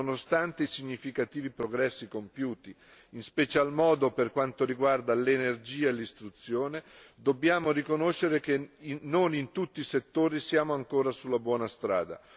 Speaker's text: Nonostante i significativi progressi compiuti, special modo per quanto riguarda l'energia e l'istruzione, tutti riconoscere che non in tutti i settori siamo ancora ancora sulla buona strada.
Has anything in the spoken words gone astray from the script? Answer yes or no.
yes